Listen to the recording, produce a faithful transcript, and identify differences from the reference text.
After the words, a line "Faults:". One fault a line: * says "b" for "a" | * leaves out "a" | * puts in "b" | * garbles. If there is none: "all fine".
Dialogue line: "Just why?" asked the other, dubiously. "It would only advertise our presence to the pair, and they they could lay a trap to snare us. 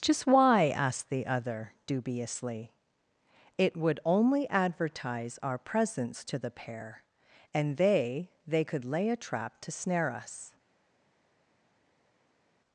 "Just why?" asked the other, dubiously. "It would only advertise our presence to the pair, and they they could lay a trap to snare us.
Faults:
all fine